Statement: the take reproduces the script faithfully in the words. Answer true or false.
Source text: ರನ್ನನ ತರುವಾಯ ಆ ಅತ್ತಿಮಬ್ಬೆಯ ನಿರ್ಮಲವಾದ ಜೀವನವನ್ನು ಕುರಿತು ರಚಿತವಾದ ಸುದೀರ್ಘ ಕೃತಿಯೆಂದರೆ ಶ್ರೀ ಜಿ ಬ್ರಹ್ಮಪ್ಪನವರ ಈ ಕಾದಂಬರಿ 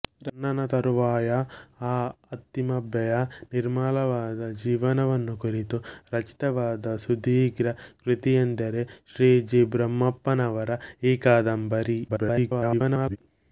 false